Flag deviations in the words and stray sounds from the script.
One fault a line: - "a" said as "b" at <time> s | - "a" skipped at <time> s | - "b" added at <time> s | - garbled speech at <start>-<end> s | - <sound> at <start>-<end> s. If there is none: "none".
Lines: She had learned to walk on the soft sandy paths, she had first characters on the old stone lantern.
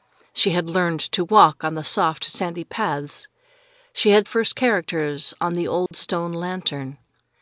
- dropout at 5.9-5.9 s